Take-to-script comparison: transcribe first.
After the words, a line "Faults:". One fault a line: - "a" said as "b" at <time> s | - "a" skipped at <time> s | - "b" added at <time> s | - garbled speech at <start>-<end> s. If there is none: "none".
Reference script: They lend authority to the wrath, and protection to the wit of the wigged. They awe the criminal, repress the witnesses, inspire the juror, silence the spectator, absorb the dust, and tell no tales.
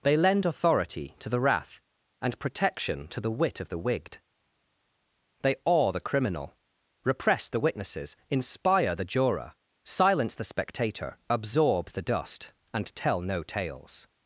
They lend authority to the wrath, and protection to the wit of the wigged. They awe the criminal, repress the witnesses, inspire the juror, silence the spectator, absorb the dust, and tell no tales.
Faults:
none